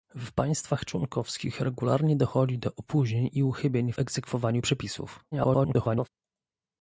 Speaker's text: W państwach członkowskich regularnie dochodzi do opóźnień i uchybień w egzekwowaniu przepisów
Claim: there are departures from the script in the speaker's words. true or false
true